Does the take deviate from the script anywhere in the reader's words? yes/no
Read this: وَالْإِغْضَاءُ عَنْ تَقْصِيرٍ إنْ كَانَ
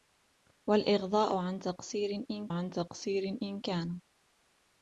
yes